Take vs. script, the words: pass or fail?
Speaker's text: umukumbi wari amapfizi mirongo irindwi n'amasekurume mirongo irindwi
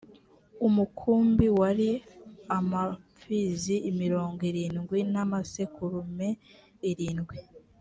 fail